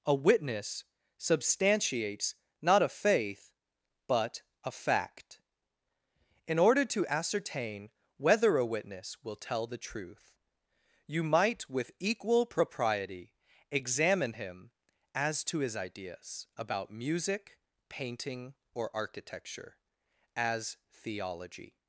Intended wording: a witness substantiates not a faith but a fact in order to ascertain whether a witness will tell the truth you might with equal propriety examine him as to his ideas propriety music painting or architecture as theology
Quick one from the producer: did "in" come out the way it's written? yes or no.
yes